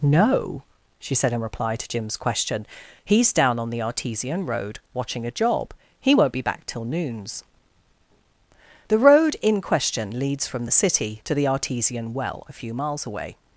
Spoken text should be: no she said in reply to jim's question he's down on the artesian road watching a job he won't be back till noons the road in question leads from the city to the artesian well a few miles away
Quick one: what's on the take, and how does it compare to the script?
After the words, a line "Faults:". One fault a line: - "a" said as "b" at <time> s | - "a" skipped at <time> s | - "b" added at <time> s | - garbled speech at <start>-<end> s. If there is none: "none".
no she said in reply to jim's question he's down on the artesian road watching a job he won't be back till noons the road in question leads from the city to the artesian well a few miles away
Faults:
none